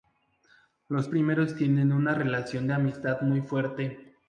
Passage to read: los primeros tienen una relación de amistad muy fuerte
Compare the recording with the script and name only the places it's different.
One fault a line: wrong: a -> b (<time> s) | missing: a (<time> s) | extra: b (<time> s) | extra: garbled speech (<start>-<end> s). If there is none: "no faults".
no faults